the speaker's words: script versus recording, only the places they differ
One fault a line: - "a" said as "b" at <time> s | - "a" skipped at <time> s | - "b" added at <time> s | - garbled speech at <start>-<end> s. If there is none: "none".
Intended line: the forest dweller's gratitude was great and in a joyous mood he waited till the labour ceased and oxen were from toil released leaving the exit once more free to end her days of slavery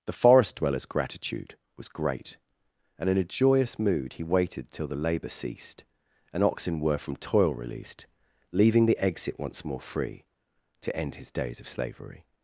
- "her" said as "his" at 11.2 s